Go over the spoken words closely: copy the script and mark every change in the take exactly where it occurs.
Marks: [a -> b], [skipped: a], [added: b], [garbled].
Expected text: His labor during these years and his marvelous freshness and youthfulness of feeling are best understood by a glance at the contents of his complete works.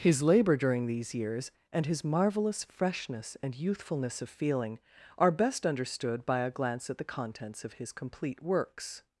His labor during these years and his marvelous freshness and youthfulness of feeling are best understood by a glance at the contents of his complete works.